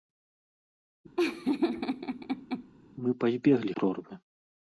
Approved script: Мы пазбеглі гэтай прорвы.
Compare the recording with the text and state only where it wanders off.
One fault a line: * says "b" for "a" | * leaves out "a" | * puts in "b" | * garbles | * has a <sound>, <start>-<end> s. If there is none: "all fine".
* has a laugh, 1.2-2.7 s
* leaves out "гэтай"